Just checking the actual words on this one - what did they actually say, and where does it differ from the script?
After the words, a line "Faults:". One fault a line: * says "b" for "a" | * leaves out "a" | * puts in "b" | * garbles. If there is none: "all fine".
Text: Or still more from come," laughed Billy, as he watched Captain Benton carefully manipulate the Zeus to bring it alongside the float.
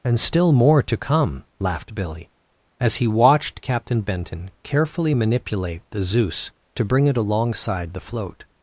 And still more to come," laughed Billy, as he watched Captain Benton carefully manipulate the Zeus to bring it alongside the float.
Faults:
* says "And" for "Or"
* says "to" for "from"